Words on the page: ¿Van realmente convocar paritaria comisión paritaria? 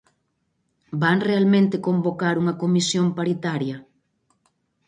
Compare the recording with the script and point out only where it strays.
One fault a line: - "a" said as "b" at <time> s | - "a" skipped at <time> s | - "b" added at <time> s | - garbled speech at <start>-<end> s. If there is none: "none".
- "paritaria" said as "unha" at 2.4 s